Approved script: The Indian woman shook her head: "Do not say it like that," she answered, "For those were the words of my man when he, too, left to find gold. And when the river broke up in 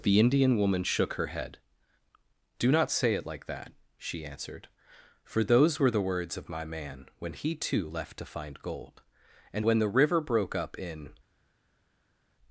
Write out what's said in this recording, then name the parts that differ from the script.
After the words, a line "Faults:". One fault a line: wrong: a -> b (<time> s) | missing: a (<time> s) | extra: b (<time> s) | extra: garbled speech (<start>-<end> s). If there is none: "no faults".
The Indian woman shook her head: "Do not say it like that," she answered, "For those were the words of my man when he, too, left to find gold. And when the river broke up in
Faults:
no faults